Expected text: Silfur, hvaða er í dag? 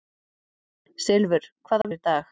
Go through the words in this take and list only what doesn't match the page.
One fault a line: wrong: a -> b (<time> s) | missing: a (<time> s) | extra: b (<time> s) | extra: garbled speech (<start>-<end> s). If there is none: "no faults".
no faults